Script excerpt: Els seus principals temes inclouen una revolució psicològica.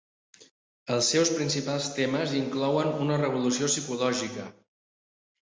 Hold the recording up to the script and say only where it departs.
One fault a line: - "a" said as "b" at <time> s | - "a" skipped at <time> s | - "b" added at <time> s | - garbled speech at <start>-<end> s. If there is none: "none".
none